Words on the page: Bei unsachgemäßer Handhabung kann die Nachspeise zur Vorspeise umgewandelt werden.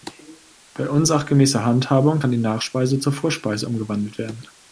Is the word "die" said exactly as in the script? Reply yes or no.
yes